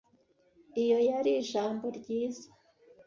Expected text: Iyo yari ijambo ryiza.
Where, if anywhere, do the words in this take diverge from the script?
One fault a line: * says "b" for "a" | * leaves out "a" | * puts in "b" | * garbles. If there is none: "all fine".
all fine